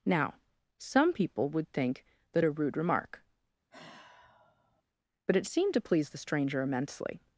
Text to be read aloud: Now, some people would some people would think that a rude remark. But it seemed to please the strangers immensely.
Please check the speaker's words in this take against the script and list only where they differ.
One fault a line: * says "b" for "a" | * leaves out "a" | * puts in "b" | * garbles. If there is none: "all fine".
* leaves out "some people would"
* says "stranger" for "strangers"